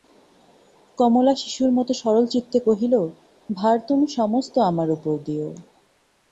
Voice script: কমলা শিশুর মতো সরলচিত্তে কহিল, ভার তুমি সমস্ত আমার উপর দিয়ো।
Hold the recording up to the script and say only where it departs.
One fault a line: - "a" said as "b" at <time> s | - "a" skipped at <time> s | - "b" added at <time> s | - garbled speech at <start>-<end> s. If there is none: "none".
none